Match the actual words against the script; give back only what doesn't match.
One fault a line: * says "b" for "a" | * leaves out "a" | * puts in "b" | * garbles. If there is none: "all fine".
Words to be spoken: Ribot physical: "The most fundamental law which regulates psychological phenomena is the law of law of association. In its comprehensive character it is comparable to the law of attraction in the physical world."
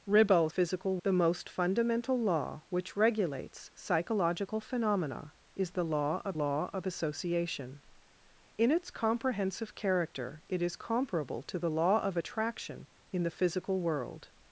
all fine